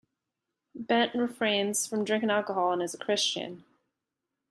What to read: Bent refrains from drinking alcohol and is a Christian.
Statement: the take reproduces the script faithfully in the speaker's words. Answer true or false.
true